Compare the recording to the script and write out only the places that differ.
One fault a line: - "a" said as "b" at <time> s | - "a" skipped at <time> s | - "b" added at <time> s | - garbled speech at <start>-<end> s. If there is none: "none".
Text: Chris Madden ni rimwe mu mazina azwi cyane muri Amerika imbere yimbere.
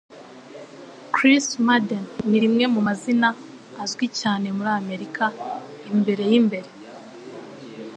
none